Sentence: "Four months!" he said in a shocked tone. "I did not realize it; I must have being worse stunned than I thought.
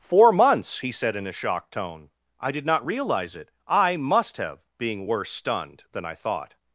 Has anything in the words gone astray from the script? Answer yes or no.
no